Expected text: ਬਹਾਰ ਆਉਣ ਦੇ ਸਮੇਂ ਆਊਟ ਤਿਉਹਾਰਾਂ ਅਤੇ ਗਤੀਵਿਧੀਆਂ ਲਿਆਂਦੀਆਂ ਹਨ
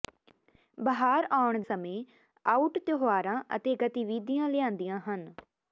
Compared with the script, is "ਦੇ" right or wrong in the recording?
wrong